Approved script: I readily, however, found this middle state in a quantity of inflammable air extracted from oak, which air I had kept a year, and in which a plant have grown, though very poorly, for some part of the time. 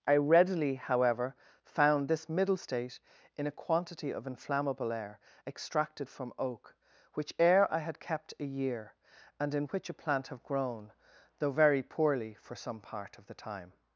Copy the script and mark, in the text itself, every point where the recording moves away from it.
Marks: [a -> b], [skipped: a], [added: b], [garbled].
I readily, however, found this middle state in a quantity of inflammable air extracted from oak, which air I had kept a year, and in which a plant have grown, though very poorly, for some part of the time.